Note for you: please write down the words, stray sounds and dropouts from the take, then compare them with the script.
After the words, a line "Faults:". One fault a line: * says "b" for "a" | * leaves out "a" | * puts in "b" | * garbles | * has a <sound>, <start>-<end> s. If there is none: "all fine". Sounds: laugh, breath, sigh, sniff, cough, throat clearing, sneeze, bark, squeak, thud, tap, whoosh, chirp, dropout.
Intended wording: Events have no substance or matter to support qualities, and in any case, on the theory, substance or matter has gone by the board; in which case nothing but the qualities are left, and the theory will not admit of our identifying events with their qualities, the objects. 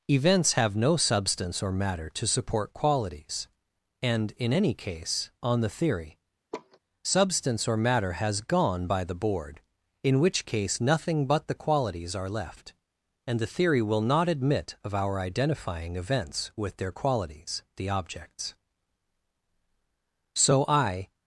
Events have no substance or matter to support qualities, and in any case, on the theory, substance or matter has gone by the board; in which case nothing but the qualities are left, and the theory will not admit of our identifying events with their qualities, the objects. So I
Faults:
* has a laugh, 6.5-6.8 s
* puts in "So I"